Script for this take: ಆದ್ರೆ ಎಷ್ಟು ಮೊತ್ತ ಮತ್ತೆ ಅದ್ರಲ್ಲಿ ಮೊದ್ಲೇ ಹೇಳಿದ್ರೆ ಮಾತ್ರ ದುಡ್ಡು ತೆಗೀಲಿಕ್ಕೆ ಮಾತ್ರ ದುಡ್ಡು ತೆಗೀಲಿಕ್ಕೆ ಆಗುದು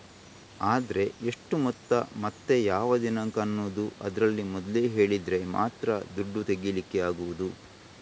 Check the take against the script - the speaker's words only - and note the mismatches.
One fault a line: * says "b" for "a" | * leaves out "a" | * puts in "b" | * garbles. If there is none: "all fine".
* puts in "ಯಾವ ದಿನಾಂಕ ಅನ್ನುದು"
* leaves out "ಮಾತ್ರ ದುಡ್ಡು ತೆಗೀಲಿಕ್ಕೆ"